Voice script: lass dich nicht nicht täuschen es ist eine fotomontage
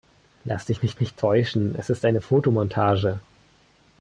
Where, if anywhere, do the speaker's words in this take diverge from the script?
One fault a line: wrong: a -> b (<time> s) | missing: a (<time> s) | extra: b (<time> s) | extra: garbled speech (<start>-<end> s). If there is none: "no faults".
no faults